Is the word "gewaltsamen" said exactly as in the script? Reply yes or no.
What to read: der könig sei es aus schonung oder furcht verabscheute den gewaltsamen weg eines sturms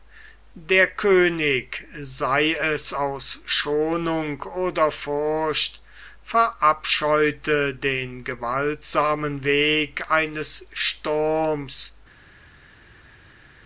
yes